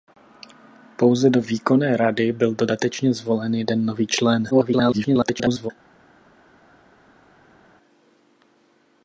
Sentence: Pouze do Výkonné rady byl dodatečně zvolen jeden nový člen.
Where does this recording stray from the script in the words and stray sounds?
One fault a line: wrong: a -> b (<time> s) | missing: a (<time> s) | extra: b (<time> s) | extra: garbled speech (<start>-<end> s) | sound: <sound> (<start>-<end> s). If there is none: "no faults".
extra: garbled speech (4.5-5.7 s)